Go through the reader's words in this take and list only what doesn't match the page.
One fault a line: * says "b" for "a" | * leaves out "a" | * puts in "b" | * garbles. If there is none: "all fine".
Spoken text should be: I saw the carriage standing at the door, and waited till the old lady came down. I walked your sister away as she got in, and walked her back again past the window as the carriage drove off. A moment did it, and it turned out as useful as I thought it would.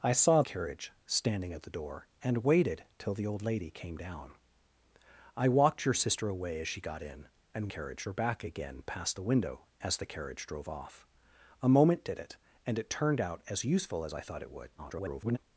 * leaves out "the"
* says "carriage" for "walked"
* garbles